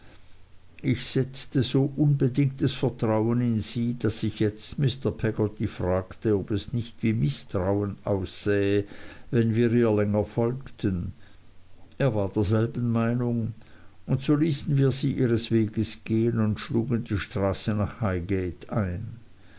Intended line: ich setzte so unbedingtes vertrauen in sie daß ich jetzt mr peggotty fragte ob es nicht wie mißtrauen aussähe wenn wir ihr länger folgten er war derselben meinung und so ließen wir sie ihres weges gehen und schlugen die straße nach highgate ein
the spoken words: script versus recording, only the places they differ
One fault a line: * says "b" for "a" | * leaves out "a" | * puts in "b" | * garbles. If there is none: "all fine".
all fine